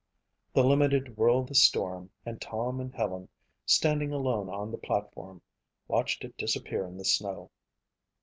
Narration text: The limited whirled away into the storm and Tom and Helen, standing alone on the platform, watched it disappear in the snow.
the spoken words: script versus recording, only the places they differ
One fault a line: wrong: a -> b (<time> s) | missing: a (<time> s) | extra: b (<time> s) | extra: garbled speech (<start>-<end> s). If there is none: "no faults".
missing: away into (1.5 s)